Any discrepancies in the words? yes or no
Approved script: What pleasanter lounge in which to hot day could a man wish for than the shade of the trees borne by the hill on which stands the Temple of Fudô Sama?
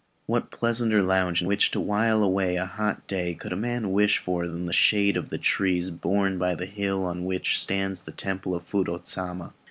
yes